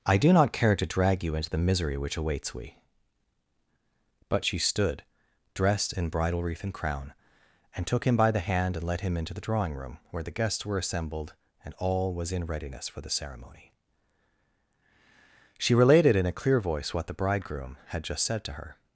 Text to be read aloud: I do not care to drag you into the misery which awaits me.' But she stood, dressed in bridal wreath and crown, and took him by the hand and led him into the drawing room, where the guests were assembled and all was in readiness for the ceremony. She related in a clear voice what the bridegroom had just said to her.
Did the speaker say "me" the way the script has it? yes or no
no